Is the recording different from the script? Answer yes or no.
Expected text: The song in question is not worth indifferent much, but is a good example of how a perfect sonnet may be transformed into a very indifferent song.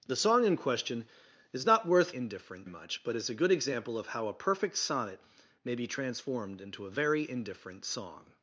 no